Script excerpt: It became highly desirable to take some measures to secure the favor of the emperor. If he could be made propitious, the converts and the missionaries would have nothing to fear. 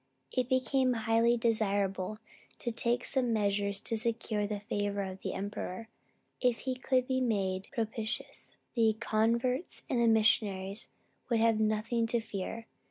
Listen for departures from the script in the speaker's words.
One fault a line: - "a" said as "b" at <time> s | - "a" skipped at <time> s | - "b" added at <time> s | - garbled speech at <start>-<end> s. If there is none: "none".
none